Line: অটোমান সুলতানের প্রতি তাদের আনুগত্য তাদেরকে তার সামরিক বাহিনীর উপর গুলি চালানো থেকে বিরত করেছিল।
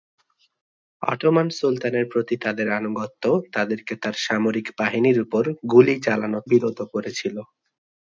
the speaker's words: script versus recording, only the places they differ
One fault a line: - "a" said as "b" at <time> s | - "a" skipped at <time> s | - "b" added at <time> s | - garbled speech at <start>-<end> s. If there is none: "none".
- "থেকে" skipped at 6.4 s